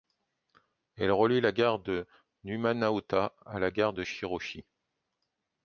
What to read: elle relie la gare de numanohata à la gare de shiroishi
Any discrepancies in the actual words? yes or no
no